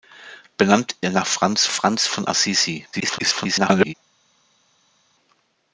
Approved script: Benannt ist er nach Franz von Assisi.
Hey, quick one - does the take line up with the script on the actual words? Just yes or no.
no